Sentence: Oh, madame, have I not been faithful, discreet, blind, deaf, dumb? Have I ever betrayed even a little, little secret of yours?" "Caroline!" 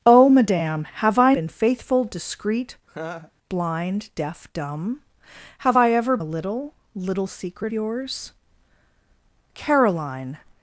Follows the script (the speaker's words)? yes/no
no